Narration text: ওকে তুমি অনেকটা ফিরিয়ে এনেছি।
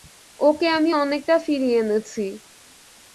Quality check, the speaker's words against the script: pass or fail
fail